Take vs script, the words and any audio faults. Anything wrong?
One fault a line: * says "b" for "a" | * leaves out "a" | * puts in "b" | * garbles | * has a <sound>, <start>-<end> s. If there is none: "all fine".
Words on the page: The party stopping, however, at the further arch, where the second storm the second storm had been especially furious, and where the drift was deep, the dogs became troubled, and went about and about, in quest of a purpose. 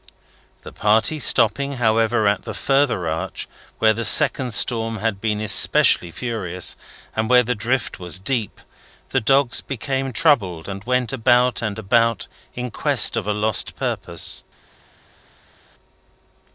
* leaves out "the second storm"
* puts in "lost"